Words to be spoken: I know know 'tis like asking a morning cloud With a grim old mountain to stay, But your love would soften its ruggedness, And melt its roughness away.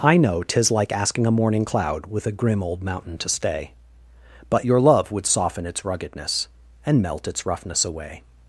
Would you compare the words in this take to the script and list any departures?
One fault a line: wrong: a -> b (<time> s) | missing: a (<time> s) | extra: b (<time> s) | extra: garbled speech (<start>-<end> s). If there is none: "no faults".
missing: know (0.4 s)